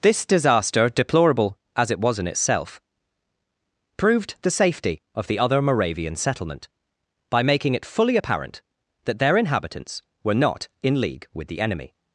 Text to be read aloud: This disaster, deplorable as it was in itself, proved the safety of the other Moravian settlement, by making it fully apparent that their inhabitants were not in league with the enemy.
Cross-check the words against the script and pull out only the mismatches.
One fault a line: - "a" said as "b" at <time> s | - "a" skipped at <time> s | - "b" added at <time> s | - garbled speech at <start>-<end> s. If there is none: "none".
none